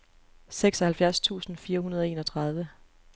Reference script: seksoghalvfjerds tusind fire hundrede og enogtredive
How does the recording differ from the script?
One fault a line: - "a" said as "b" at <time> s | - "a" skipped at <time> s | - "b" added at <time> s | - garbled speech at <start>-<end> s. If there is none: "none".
none